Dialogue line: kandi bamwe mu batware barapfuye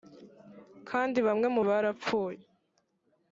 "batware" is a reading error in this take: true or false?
true